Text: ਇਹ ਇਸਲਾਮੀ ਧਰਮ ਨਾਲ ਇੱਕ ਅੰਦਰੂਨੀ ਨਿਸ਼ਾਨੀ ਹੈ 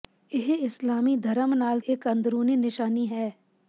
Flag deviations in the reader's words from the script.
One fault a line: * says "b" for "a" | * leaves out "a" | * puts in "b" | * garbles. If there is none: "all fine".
all fine